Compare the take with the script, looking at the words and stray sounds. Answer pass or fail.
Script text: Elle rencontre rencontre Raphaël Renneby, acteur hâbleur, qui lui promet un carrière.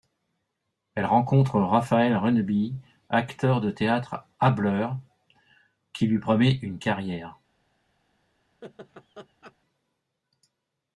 fail